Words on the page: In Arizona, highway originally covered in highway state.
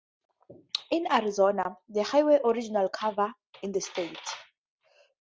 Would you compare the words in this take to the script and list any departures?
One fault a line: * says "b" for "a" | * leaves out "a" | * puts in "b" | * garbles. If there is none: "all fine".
* puts in "the"
* says "the" for "highway"